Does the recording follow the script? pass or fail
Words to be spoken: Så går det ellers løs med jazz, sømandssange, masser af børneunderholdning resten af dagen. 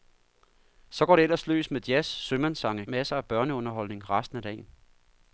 pass